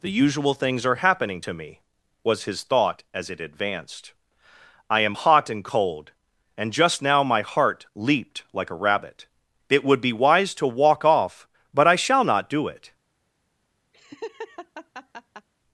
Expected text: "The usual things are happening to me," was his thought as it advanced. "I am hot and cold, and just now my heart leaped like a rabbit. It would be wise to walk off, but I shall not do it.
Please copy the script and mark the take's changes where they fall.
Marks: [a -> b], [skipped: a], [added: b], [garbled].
"The usual things are happening to me," was his thought as it advanced. "I am hot and cold, and just now my heart leaped like a rabbit. It would be wise to walk off, but I shall not do it.